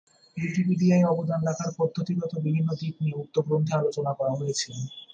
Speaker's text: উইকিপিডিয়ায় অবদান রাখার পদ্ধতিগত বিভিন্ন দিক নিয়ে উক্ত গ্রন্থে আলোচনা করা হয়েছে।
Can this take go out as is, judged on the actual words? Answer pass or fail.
pass